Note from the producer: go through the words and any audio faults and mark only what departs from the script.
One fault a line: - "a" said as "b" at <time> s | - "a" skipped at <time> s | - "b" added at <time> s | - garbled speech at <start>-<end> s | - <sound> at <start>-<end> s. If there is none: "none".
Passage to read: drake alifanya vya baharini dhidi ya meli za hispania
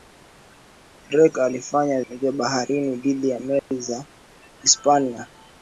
- dropout at 3.6-3.7 s